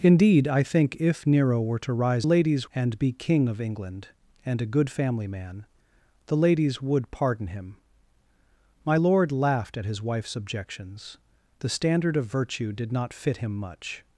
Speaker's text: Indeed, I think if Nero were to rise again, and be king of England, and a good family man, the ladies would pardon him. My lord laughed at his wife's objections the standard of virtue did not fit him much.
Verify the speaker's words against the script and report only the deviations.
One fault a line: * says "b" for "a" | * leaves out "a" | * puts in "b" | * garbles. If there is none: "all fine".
* says "ladies" for "again"